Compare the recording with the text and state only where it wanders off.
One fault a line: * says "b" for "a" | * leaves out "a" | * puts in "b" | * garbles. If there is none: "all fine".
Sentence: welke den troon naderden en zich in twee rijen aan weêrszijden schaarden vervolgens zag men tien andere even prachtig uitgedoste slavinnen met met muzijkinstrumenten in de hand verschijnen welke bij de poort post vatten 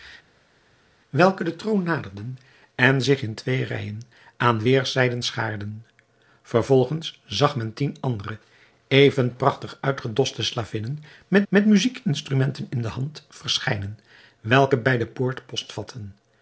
all fine